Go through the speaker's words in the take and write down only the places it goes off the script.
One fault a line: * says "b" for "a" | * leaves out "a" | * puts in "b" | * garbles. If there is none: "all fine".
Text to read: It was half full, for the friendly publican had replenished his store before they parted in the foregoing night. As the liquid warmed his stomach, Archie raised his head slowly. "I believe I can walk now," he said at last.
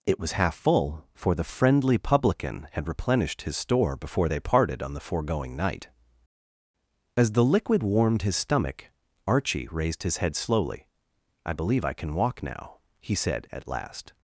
* says "on" for "in"